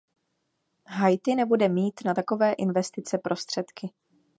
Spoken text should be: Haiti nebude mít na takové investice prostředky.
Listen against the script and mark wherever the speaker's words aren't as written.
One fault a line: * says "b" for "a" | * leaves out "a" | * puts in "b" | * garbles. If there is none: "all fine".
all fine